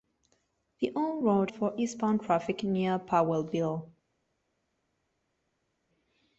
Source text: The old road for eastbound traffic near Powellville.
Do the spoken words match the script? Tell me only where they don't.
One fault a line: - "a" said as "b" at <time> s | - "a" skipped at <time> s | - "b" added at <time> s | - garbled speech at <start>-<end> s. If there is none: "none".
none